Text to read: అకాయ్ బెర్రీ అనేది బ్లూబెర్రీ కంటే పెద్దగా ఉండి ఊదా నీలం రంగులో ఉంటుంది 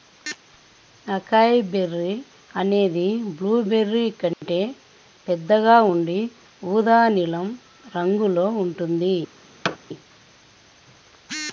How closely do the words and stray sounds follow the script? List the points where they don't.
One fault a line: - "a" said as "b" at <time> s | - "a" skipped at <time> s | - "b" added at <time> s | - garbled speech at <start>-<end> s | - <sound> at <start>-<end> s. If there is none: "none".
- dropout at 4.3-4.4 s
- thud at 9.6-9.8 s